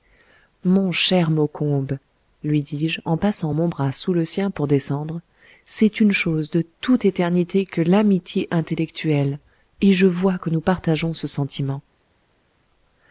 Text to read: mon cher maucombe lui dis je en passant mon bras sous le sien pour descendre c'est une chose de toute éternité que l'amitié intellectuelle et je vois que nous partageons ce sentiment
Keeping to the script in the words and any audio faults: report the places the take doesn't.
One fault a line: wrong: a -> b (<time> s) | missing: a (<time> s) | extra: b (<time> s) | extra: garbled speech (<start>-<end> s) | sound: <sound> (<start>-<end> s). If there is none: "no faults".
no faults